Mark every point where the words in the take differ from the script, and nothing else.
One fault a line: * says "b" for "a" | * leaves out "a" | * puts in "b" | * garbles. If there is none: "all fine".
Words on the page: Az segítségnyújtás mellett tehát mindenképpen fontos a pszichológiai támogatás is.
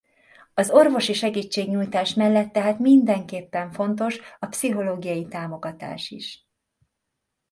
* puts in "orvosi"